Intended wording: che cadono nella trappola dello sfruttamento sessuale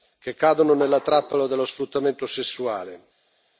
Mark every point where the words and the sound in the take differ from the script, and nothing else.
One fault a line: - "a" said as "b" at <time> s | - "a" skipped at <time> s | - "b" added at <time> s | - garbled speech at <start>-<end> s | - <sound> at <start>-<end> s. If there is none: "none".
none